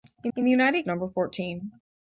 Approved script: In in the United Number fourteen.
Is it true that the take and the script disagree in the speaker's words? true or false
false